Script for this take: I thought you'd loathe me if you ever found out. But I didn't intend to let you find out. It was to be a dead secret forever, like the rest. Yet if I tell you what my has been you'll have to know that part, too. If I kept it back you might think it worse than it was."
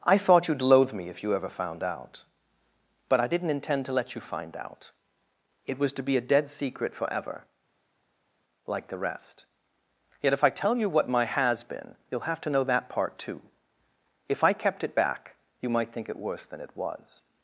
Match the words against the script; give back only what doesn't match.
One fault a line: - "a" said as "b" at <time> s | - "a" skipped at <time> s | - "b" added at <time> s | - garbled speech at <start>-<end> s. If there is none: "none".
none